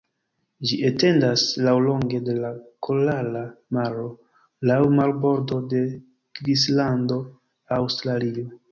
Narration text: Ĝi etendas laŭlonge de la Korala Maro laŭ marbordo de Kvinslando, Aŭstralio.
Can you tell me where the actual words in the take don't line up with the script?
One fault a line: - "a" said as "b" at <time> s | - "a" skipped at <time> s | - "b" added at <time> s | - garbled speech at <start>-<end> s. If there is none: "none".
none